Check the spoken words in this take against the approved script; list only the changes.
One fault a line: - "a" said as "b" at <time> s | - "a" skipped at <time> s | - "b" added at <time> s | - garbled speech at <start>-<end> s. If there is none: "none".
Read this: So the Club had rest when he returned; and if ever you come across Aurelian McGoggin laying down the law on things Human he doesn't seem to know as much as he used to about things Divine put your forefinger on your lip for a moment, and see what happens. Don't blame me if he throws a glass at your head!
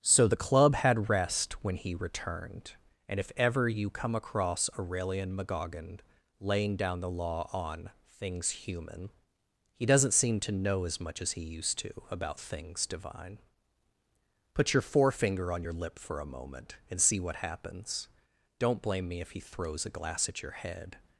none